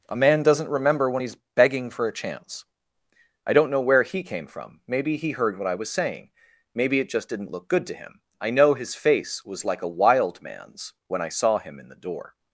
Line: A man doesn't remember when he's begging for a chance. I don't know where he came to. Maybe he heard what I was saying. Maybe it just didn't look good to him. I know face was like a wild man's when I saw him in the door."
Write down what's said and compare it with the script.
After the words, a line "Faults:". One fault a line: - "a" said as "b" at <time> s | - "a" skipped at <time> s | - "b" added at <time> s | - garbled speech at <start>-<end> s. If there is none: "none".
A man doesn't remember when he's begging for a chance. I don't know where he came from. Maybe he heard what I was saying. Maybe it just didn't look good to him. I know his face was like a wild man's when I saw him in the door."
Faults:
- "to" said as "from" at 4.5 s
- "his" added at 8.7 s